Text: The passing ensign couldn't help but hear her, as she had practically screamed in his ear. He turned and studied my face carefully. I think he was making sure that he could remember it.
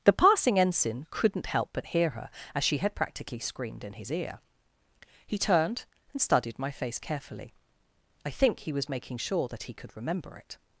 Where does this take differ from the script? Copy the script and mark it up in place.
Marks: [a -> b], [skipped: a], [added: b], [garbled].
The passing ensign couldn't help but hear her, as she had practically screamed in his ear. He turned and studied my face carefully. I think he was making sure that he could remember it.